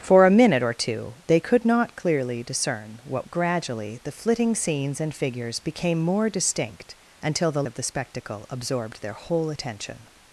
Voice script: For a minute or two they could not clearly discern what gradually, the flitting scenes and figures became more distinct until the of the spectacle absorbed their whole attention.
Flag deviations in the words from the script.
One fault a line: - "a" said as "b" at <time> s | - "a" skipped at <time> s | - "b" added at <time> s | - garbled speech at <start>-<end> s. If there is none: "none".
none